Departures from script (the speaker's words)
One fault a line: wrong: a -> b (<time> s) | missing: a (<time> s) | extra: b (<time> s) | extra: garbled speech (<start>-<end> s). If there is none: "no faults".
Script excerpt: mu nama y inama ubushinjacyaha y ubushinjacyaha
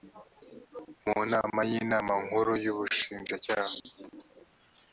wrong: ubushinjacyaha -> nkuru (2.2 s)